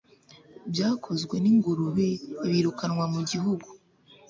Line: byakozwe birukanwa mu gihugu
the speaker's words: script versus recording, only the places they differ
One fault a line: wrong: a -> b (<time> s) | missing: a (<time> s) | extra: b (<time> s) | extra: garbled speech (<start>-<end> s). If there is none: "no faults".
extra: n'ingurube (1.4 s)